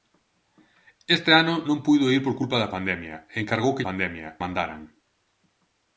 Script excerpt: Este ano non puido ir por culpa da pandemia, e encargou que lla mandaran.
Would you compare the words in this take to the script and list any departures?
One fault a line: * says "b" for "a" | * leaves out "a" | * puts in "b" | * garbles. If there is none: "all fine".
* says "pandemia" for "lla"